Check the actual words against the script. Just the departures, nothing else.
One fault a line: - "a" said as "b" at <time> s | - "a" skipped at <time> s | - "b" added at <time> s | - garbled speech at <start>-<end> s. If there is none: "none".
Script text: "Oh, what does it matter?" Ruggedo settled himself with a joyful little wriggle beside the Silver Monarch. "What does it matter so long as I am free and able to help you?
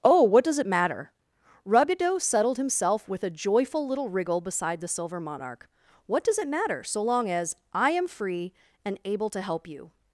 none